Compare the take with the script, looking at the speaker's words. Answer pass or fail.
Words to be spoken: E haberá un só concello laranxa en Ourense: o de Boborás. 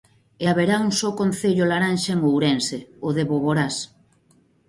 pass